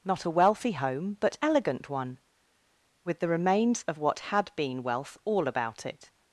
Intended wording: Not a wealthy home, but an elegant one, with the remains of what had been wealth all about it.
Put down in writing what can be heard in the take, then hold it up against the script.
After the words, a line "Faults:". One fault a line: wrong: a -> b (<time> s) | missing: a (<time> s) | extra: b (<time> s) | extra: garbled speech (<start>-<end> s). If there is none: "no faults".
Not a wealthy home, but elegant one, with the remains of what had been wealth all about it.
Faults:
missing: an (1.4 s)